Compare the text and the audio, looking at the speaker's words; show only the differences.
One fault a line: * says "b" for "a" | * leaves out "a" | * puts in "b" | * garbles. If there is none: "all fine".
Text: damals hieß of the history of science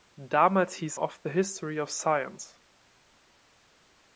all fine